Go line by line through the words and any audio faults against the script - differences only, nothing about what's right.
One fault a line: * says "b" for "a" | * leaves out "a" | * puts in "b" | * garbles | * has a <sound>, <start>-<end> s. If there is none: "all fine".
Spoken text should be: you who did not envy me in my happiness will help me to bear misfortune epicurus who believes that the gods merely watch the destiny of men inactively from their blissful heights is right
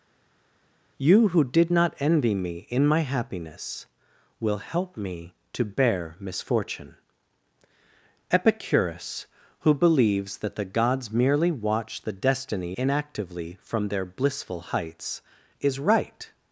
* leaves out "of men"